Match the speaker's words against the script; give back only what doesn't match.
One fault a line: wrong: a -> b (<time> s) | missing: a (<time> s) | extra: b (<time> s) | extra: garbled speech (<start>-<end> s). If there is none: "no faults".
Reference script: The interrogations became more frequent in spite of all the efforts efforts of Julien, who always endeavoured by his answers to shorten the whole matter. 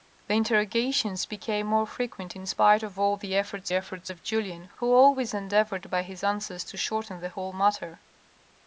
no faults